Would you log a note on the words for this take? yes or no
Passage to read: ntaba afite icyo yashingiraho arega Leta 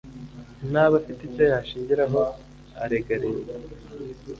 no